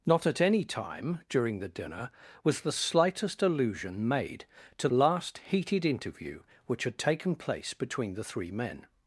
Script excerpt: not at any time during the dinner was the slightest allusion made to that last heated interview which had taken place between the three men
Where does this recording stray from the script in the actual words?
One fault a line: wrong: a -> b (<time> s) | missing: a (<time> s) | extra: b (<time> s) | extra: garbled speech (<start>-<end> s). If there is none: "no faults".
missing: that (4.9 s)